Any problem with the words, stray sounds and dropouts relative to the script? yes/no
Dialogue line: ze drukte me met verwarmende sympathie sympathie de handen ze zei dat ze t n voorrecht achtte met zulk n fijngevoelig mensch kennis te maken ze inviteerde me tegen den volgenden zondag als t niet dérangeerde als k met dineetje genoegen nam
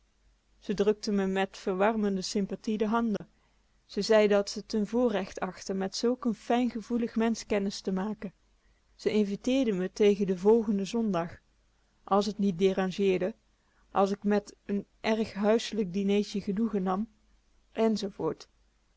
yes